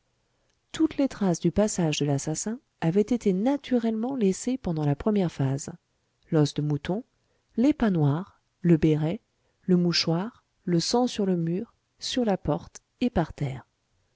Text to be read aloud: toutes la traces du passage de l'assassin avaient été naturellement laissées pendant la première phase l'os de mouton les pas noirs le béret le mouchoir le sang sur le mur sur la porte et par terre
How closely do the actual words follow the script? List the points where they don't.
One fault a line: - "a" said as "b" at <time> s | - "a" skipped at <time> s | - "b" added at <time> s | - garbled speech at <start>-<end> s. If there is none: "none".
- "la" said as "les" at 1.0 s